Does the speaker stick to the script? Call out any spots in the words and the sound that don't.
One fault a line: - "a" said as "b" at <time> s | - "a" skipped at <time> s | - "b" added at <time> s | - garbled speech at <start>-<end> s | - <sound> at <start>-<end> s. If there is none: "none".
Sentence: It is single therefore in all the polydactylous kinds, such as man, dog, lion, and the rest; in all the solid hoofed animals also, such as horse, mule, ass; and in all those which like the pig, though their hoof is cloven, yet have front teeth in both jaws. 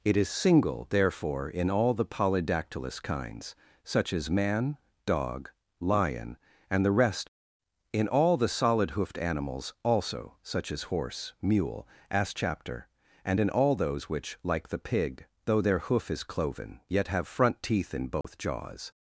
- "chapter" added at 12.3 s
- dropout at 18.2-18.2 s